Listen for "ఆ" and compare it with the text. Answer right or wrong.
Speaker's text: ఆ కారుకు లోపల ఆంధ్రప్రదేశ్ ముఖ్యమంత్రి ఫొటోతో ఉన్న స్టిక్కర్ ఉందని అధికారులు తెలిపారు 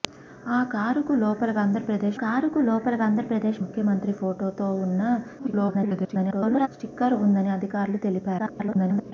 right